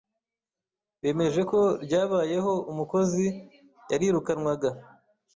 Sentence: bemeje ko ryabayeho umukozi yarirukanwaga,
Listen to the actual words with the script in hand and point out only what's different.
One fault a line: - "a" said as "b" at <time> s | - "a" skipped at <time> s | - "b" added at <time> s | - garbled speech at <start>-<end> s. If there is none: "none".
none